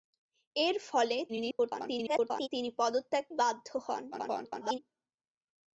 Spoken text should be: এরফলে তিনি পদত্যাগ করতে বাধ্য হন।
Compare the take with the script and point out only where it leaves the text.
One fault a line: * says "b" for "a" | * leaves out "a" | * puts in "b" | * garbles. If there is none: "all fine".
* garbles
* leaves out "করতে"
* garbles